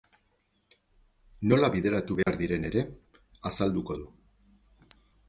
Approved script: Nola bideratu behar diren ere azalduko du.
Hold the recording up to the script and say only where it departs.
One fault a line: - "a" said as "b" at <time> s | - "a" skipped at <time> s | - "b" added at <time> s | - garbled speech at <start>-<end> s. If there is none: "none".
none